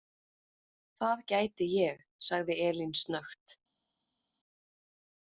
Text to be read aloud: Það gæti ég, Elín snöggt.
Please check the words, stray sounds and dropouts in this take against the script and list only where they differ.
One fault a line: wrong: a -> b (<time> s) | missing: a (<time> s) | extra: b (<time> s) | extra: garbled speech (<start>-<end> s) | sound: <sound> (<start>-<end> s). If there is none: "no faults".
extra: sagði (2.3 s)